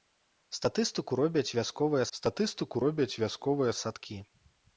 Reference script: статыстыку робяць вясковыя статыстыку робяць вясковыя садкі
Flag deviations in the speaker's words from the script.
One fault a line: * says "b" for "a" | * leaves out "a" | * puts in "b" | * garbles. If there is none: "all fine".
all fine